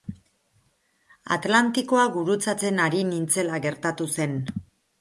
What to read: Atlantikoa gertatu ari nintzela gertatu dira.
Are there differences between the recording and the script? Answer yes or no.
yes